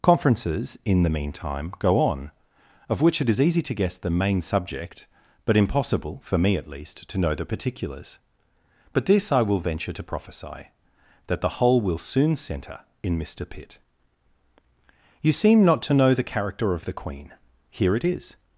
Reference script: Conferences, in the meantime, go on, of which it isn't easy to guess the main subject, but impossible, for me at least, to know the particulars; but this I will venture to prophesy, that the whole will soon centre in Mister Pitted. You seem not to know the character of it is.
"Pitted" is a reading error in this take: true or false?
true